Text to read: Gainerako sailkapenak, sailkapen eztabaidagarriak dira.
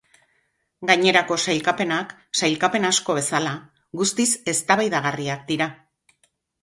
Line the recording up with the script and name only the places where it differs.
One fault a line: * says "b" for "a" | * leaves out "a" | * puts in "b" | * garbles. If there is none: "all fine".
* puts in "asko bezala guztiz"